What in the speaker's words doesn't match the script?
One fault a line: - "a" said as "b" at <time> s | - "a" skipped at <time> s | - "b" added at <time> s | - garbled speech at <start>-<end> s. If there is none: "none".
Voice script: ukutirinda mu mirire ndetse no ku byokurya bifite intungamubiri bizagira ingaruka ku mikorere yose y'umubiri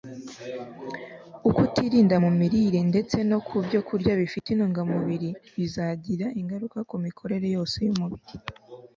none